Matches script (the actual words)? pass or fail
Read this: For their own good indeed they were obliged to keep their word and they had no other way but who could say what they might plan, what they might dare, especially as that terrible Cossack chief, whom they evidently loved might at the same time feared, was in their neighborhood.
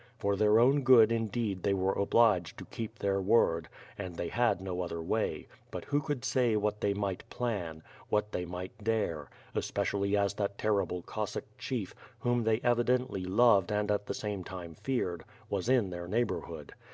fail